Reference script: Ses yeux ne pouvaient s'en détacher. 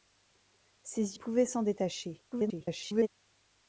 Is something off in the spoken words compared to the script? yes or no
yes